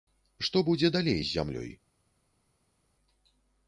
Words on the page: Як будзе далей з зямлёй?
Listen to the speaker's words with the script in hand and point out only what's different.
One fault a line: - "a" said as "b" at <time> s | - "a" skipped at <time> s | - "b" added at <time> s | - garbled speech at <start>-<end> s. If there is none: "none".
- "Як" said as "Што" at 0.5 s